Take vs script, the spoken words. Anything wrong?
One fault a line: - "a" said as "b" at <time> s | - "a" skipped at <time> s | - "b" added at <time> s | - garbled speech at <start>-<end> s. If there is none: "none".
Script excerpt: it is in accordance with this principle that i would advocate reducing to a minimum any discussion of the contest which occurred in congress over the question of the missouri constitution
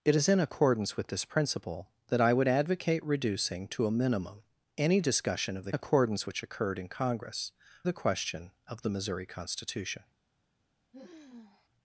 - "contest" said as "accordance" at 5.7 s
- "over" skipped at 7.5 s